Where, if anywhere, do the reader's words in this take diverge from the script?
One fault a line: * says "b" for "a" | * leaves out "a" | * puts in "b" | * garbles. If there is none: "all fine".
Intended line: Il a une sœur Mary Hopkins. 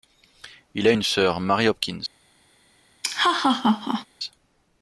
all fine